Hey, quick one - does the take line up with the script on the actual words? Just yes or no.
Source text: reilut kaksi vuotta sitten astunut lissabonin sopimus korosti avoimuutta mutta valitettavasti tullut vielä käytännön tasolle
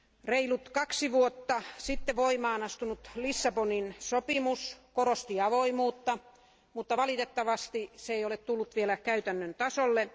no